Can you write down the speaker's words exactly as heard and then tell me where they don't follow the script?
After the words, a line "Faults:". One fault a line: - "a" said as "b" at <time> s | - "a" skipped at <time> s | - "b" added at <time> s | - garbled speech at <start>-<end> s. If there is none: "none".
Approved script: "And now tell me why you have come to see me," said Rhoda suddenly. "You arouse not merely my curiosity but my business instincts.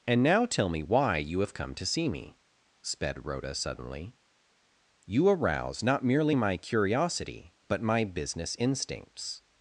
"And now tell me why you have come to see me," sped Rhoda suddenly. "You arouse not merely my curiosity but my business instincts.
Faults:
- "said" said as "sped" at 2.8 s